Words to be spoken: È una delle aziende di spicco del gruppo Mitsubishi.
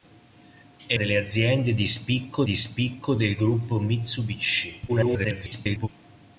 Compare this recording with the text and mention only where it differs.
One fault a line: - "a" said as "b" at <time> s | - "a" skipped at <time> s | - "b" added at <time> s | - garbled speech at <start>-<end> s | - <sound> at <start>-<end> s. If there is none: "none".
- "una" skipped at 1.0 s
- "di spicco" added at 2.4 s
- garbled speech at 4.9-5.9 s